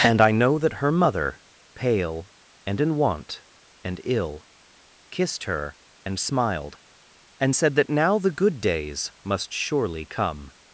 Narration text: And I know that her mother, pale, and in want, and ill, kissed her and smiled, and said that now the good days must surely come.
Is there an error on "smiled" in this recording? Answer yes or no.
no